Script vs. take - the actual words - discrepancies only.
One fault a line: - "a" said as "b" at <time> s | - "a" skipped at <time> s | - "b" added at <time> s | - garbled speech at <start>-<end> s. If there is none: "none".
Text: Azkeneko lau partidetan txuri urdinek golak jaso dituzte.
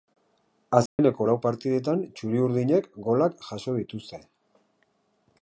none